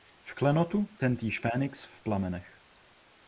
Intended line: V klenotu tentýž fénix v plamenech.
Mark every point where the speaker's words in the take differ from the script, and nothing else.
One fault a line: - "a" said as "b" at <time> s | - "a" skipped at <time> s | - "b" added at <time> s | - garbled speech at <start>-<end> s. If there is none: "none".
none